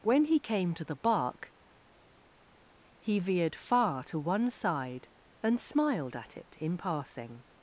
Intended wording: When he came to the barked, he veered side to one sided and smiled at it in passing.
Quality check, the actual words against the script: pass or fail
fail